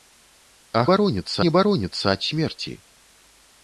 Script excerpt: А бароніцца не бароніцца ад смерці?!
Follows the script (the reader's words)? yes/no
yes